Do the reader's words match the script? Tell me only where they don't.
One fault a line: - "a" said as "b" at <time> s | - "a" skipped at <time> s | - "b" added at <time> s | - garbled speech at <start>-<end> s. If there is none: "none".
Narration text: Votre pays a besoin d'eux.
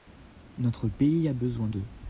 - "Votre" said as "Notre" at 0.6 s